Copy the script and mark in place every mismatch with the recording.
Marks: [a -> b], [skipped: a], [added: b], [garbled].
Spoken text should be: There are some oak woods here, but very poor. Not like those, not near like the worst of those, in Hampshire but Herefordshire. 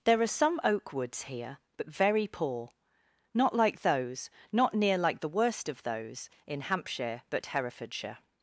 There are some oak woods here, but very poor. Not like those, not near like the worst of those, in Hampshire but Herefordshire.